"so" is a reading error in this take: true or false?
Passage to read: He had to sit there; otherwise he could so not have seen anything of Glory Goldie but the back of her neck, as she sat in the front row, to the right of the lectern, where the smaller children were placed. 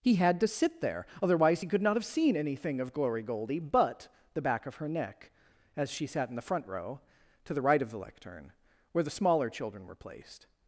true